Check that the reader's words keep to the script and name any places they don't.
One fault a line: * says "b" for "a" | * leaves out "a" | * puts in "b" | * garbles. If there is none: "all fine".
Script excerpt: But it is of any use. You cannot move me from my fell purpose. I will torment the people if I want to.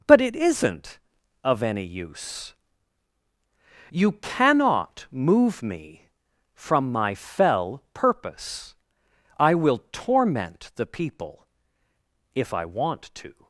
* says "isn't" for "is"